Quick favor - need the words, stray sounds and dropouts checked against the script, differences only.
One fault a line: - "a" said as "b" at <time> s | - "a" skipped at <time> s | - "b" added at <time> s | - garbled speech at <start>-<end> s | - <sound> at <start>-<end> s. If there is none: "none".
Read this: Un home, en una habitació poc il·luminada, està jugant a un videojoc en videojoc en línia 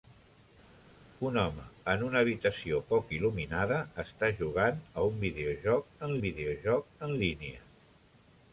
none